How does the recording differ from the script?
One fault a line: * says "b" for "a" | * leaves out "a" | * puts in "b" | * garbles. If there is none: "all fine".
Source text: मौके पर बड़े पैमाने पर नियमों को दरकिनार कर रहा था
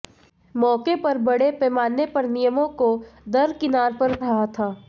all fine